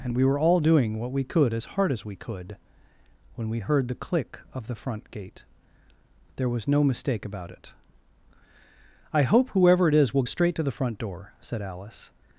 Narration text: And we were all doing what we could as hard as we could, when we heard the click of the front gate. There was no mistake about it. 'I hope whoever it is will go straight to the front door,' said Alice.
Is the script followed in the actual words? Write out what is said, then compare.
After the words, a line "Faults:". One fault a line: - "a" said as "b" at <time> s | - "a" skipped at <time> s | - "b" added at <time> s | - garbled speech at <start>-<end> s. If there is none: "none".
And we were all doing what we could as hard as we could, when we heard the click of the front gate. There was no mistake about it. 'I hope whoever it is will straight to the front door,' said Alice.
Faults:
- "go" skipped at 10.2 s